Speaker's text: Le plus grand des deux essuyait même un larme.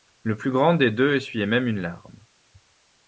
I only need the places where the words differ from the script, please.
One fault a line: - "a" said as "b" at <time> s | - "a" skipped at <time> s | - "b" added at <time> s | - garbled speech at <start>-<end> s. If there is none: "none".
- "un" said as "une" at 1.7 s